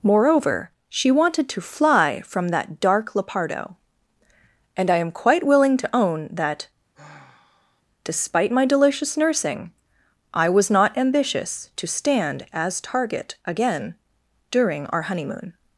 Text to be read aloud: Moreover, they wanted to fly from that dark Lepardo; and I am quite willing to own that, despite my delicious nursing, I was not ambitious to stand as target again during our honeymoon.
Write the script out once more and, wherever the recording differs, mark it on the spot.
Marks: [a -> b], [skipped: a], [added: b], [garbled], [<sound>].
Moreover, [they -> she] wanted to fly from that dark Lepardo; and I am quite willing to own that, [sigh] despite my delicious nursing, I was not ambitious to stand as target again during our honeymoon.